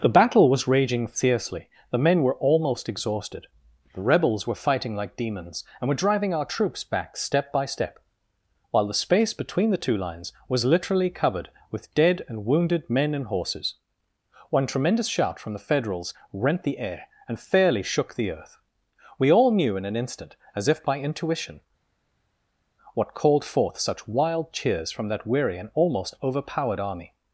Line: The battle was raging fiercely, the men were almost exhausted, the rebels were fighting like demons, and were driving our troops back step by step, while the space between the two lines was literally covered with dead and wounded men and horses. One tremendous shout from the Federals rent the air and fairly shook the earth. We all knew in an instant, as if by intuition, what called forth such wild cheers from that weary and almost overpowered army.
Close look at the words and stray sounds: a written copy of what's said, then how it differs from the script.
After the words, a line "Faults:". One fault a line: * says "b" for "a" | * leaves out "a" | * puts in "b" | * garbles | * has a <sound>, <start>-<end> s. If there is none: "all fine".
The battle was raging fiercely, the men were almost exhausted, the rebels were fighting like demons, and were driving our troops back step by step, while the space between the two lines was literally covered with dead and wounded men and horses. One tremendous shout from the Federals rent the air and fairly shook the earth. We all knew in an instant, as if by intuition, what called forth such wild cheers from that weary and almost overpowered army.
Faults:
all fine